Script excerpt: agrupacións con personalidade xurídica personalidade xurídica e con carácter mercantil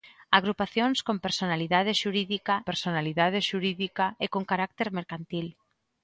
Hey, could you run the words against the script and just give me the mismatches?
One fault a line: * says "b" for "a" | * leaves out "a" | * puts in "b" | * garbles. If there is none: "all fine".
all fine